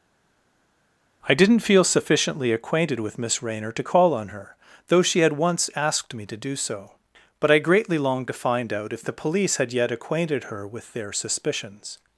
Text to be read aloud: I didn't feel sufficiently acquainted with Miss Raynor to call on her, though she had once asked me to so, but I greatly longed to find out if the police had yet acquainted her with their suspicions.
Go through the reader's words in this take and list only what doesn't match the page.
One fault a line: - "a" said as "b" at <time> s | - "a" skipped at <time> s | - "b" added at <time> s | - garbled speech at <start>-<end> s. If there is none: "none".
- "do" added at 6.4 s